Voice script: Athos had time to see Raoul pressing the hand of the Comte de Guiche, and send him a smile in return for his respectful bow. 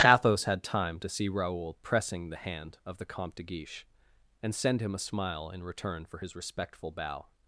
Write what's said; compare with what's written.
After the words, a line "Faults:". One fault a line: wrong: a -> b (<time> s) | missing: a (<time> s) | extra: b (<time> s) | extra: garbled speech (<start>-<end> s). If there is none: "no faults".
Athos had time to see Raoul pressing the hand of the Comte de Guiche, and send him a smile in return for his respectful bow.
Faults:
no faults